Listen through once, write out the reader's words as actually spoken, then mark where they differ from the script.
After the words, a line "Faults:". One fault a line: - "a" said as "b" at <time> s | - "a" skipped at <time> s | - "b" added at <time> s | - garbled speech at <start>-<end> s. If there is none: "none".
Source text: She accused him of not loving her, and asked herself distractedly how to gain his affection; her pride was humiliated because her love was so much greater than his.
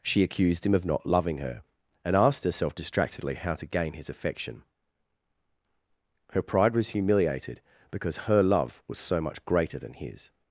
She accused him of not loving her, and asked herself distractedly how to gain his affection; her pride was humiliated because her love was so much greater than his.
Faults:
none